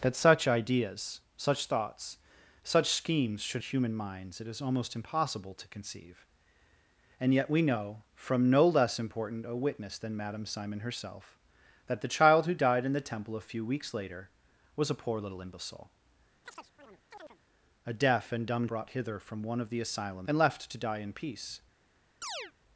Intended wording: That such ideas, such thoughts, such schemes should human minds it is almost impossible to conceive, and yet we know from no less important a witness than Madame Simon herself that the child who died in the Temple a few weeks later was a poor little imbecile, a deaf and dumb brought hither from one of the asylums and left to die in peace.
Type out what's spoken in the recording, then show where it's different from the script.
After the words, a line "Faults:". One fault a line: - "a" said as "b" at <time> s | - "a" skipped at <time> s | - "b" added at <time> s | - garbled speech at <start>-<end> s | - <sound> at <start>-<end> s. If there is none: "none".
That such ideas, such thoughts, such schemes should human minds it is almost impossible to conceive, and yet we know from no less important a witness than Madame Simon herself that the child who died in the Temple a few weeks later was a poor little imbecile, a deaf and dumb brought hither from one of the asylums and left to die in peace.
Faults:
- chirp at 16.4-17.4 s
- chirp at 22.2-22.5 s